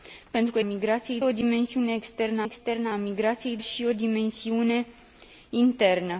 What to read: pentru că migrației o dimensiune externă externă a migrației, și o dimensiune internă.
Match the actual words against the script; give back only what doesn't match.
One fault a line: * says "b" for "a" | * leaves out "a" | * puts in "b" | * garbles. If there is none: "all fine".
all fine